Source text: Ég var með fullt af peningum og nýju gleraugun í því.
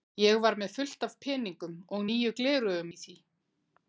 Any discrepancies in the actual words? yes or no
no